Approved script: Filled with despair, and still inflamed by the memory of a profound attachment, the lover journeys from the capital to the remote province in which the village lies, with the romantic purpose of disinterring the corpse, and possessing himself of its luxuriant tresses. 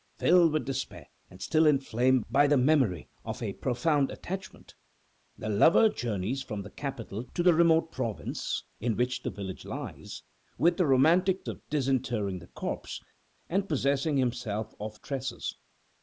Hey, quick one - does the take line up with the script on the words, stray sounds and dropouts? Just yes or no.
no